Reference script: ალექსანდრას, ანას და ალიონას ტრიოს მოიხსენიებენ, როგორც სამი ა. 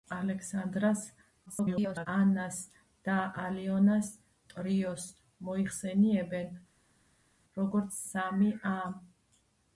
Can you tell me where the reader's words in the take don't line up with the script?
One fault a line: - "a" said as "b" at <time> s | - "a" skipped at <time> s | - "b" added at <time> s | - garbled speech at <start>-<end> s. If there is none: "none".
- garbled speech at 1.5-2.1 s